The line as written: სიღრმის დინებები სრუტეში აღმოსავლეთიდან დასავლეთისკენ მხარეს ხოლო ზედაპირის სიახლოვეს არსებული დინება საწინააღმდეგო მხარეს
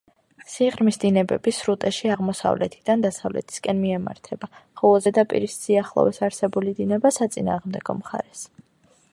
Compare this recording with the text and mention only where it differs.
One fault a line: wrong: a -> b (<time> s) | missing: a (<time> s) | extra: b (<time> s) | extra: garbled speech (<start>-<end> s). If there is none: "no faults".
wrong: მხარეს -> მიემართება (3.9 s)